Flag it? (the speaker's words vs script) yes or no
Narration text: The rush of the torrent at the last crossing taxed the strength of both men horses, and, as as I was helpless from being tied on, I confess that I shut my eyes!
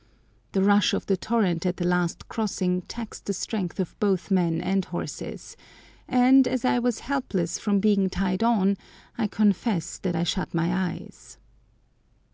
yes